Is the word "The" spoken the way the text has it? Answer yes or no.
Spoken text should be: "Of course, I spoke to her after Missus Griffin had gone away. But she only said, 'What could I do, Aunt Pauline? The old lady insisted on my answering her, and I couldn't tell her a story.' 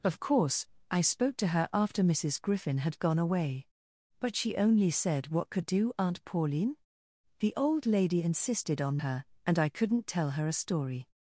yes